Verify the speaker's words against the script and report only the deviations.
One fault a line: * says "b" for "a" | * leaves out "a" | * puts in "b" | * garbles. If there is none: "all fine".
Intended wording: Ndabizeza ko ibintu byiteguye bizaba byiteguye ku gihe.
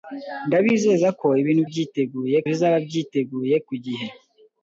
all fine